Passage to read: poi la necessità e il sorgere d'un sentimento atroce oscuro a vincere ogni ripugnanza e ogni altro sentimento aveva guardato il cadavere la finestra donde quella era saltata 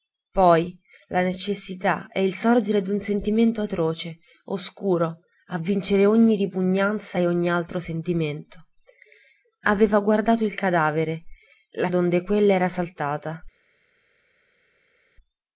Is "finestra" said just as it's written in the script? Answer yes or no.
no